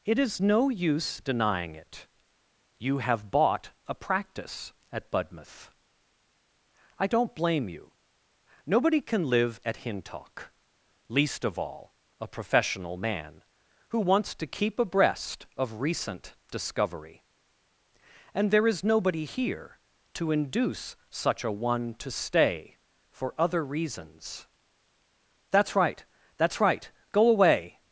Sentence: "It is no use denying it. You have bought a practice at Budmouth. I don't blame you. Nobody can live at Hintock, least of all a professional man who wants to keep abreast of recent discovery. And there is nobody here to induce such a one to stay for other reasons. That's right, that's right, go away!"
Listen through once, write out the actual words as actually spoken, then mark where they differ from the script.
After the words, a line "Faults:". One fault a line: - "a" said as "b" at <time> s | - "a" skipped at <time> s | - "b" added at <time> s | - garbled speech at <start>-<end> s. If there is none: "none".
"It is no use denying it. You have bought a practice at Budmouth. I don't blame you. Nobody can live at Hintock, least of all a professional man who wants to keep abreast of recent discovery. And there is nobody here to induce such a one to stay for other reasons. That's right, that's right, go away!"
Faults:
none